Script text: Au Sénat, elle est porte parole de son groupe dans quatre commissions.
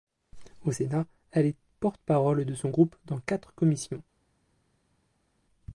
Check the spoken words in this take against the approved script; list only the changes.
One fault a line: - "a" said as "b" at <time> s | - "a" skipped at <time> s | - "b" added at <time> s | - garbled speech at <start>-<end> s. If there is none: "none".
none